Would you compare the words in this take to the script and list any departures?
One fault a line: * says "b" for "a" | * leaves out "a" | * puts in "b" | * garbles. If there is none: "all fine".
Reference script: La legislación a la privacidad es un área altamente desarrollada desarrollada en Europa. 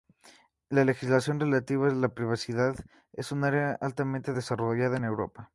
* puts in "relativa"
* leaves out "desarrollada"